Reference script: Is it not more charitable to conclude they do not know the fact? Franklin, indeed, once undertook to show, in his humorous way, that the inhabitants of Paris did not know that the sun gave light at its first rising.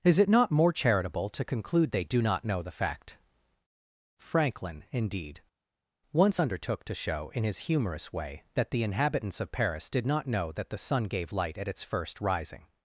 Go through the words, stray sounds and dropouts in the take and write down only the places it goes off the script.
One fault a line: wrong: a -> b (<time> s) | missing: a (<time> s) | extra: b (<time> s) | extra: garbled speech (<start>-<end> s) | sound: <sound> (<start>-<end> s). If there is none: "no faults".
no faults